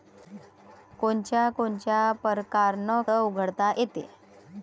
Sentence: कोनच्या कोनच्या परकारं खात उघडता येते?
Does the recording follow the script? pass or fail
fail